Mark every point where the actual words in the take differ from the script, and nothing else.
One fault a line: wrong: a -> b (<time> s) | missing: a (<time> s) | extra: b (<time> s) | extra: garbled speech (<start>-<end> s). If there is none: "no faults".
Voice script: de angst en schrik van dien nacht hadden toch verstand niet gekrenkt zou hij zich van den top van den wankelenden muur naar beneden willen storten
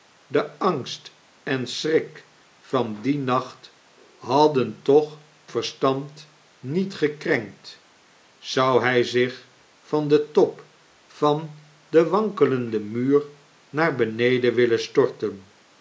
no faults